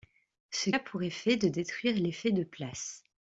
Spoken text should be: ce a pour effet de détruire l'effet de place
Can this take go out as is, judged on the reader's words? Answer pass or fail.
pass